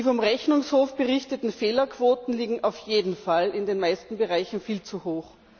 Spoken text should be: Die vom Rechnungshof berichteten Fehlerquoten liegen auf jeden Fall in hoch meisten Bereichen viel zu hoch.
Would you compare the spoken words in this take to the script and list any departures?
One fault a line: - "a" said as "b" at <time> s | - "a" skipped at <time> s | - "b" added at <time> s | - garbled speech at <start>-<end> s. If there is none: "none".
- "hoch" said as "den" at 3.7 s